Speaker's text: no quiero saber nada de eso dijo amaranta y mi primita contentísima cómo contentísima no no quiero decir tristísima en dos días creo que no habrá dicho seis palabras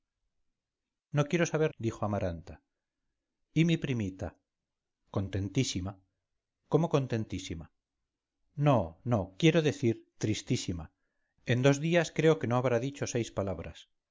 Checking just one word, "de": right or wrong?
wrong